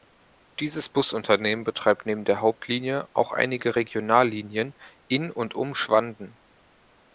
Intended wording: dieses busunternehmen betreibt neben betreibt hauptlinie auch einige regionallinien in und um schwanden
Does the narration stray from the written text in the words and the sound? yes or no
yes